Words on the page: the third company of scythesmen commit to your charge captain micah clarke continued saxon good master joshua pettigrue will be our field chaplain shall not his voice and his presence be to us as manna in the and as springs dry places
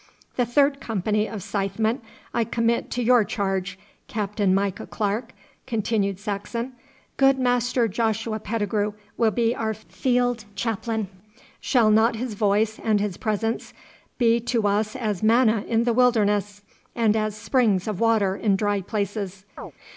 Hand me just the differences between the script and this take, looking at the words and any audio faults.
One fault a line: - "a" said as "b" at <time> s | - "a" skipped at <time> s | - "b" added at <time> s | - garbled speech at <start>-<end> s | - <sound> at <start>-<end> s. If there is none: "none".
- "i" added at 2.3 s
- "wilderness" added at 15.9 s
- "of water in" added at 17.8 s
- chirp at 19.6-19.7 s